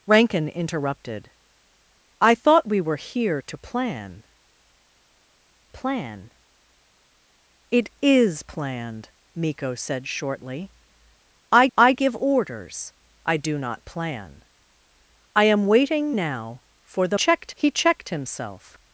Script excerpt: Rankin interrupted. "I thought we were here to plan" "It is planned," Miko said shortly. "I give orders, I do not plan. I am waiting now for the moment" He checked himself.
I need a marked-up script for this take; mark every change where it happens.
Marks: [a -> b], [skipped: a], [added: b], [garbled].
Rankin interrupted. "I thought we were here to plan" [added: plan] "It is planned," Miko said shortly. "I [added: I] give orders, I do not plan. I am waiting now for the [moment" -> checked] He checked himself.